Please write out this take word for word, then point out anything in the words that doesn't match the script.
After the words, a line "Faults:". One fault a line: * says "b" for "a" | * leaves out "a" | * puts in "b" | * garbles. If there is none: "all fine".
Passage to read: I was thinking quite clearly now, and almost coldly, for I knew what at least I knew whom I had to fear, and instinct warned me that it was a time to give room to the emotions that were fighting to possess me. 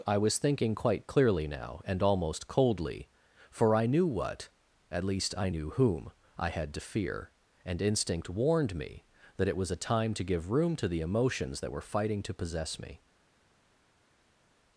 I was thinking quite clearly now, and almost coldly, for I knew what at least I knew whom I had to fear, and instinct warned me that it was a time to give room to the emotions that were fighting to possess me.
Faults:
all fine